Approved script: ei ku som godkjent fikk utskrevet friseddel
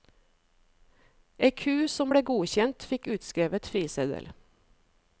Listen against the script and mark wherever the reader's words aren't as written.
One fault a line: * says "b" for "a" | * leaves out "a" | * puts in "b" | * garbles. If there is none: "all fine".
* puts in "ble"